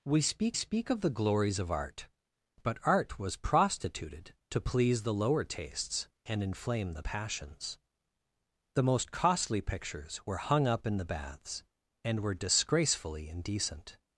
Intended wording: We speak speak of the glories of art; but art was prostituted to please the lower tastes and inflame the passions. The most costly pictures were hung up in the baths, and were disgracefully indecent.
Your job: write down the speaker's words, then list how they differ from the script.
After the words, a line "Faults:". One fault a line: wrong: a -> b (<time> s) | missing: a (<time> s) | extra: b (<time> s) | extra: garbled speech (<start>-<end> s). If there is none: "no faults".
We speak speak of the glories of art; but art was prostituted to please the lower tastes and inflame the passions. The most costly pictures were hung up in the baths, and were disgracefully indecent.
Faults:
no faults